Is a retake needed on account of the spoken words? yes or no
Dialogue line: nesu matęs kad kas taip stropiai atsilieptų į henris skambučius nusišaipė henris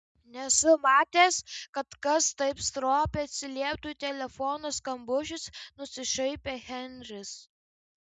yes